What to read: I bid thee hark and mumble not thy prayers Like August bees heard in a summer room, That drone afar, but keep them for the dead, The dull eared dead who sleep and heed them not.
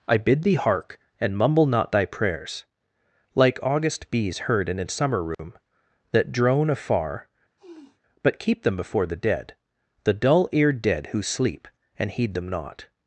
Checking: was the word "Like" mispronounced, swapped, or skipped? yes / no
no